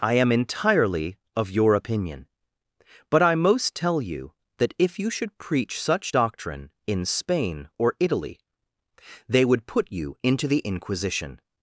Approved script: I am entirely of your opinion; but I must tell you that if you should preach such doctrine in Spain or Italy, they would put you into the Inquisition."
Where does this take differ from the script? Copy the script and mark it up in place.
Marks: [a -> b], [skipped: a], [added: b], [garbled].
I am entirely of your opinion; but I [must -> most] tell you that if you should preach such doctrine in Spain or Italy, they would put you into the Inquisition."